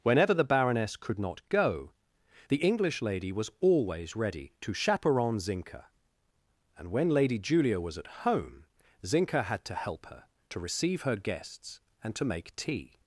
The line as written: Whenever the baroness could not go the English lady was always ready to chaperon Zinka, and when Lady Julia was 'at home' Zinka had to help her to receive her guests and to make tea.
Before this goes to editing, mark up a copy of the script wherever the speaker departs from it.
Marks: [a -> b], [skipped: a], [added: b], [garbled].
Whenever the baroness could not go the English lady was always ready to chaperon Zinka, and when Lady Julia was 'at home' Zinka had to help her to receive her guests and to make tea.